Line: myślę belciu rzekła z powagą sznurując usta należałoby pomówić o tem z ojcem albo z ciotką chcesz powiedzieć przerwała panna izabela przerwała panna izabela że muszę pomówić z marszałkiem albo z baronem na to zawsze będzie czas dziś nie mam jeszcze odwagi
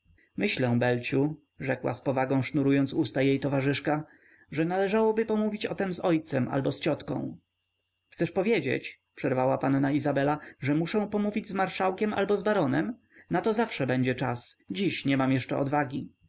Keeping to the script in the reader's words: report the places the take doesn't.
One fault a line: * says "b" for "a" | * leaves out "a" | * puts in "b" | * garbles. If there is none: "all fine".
* puts in "jej towarzyszka że"
* leaves out "przerwała panna izabela"